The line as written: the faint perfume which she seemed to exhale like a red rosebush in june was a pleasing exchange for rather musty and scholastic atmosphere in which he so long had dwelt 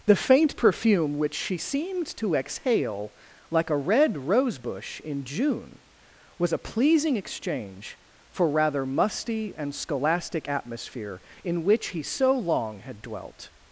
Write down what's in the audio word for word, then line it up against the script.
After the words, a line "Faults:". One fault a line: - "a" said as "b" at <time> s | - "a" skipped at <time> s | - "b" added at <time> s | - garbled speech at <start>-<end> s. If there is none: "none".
the faint perfume which she seemed to exhale like a red rosebush in june was a pleasing exchange for rather musty and scholastic atmosphere in which he so long had dwelt
Faults:
none